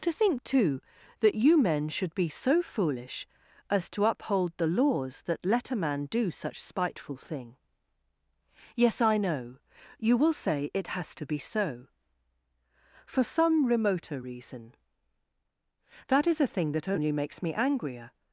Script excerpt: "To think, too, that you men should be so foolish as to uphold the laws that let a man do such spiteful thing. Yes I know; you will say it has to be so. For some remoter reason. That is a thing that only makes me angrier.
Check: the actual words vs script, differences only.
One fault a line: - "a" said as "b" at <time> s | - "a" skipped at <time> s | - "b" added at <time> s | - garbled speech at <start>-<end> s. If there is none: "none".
none